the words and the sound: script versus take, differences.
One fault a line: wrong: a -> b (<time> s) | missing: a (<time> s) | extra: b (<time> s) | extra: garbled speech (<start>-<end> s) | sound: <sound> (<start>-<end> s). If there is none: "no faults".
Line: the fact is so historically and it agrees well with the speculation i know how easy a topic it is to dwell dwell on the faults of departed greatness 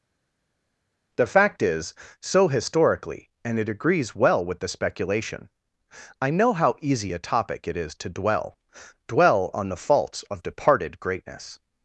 no faults